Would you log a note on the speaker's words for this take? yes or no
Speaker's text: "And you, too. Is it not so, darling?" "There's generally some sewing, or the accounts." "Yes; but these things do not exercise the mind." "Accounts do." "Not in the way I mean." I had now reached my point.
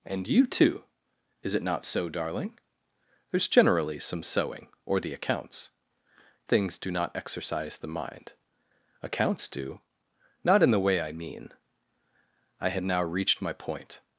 yes